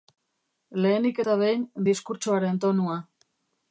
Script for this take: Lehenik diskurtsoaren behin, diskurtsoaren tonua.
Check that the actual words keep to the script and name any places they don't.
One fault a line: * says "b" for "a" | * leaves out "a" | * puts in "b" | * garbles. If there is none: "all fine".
* says "eta" for "diskurtsoaren"